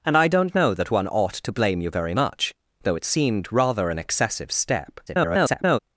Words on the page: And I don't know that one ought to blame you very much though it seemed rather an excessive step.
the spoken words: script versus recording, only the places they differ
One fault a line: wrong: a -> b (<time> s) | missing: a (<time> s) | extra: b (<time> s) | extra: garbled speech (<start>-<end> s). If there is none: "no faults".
extra: garbled speech (5.1-5.8 s)